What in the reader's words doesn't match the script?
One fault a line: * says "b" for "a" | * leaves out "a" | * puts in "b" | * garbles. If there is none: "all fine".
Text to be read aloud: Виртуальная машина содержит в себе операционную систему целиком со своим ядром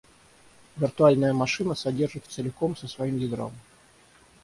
* leaves out "себе операционную систему"